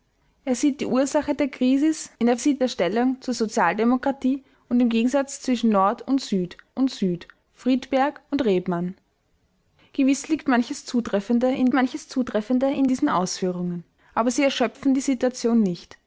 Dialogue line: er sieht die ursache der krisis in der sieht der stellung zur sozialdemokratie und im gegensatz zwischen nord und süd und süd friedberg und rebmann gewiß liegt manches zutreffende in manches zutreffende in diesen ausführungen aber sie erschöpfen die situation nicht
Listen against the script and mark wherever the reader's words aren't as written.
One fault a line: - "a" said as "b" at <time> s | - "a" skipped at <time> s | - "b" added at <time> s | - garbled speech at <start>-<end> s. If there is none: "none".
none